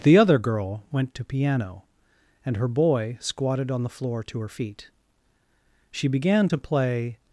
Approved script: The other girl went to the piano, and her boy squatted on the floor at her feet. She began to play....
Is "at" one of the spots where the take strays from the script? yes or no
yes